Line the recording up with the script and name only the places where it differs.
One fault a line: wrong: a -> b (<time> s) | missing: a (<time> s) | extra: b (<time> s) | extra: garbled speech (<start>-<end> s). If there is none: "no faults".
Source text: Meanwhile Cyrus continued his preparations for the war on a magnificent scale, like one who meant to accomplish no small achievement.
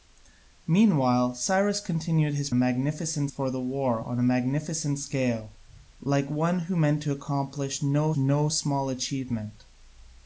wrong: preparations -> magnificent (2.5 s)
extra: no (8.2 s)